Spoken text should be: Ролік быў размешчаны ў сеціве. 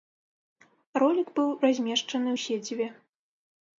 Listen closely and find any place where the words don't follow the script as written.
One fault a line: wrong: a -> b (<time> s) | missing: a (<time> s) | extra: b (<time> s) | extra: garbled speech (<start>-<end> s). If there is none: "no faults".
no faults